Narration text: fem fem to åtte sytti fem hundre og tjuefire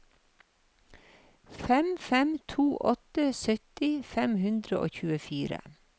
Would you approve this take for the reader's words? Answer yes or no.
yes